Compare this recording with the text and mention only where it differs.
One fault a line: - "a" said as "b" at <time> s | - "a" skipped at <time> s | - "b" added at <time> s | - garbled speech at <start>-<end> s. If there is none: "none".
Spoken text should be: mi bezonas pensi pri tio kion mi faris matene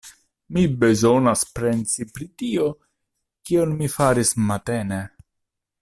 none